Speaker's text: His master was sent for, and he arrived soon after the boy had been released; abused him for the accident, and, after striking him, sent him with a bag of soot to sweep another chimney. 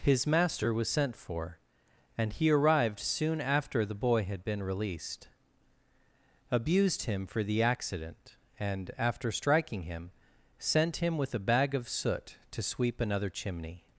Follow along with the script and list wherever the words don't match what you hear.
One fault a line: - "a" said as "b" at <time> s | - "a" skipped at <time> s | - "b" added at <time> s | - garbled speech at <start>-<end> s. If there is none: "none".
none